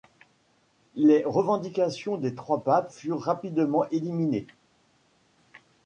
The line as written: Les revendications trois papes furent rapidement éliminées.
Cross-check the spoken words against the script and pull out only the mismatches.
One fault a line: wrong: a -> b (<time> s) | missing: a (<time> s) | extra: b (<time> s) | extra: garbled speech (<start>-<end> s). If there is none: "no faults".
extra: des (2.2 s)